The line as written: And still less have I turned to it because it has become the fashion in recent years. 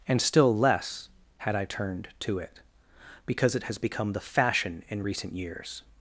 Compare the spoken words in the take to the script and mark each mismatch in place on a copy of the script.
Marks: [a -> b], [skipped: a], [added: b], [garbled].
And still less [have -> had] I turned to it because it has become the fashion in recent years.